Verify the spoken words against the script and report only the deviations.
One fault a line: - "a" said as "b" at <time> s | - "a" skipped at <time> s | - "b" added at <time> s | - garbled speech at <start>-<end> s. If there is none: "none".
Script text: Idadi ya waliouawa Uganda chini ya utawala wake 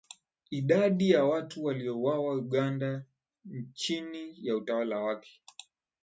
- "watu" added at 1.2 s